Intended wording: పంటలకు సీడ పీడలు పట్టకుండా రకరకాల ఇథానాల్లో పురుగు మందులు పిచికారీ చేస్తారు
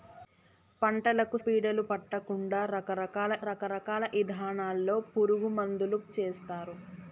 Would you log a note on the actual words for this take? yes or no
yes